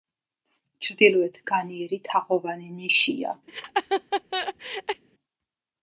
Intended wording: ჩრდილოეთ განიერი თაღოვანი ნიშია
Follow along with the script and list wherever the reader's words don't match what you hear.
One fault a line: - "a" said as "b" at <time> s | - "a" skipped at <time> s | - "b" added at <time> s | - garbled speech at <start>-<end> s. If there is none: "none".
none